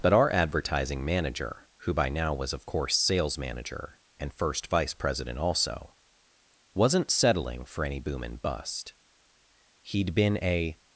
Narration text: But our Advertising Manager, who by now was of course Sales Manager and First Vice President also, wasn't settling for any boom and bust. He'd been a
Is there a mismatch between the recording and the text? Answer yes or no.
no